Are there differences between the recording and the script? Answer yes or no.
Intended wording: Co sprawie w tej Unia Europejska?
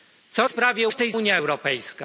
no